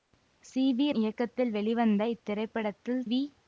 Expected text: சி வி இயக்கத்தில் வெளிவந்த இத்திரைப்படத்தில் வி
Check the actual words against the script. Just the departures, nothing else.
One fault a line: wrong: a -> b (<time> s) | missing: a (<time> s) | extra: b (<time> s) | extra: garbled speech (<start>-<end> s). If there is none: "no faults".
no faults